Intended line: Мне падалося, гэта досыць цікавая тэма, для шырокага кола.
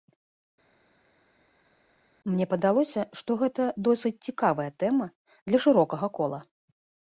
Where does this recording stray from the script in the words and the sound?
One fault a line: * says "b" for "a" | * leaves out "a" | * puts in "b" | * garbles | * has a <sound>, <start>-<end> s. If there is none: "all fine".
* puts in "што"